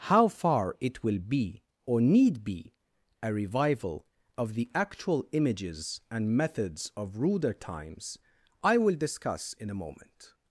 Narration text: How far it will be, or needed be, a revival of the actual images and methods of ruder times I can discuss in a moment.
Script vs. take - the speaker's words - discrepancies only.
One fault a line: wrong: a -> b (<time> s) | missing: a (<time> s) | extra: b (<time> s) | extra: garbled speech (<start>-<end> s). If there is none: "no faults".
wrong: needed -> need (2.0 s)
wrong: can -> will (8.8 s)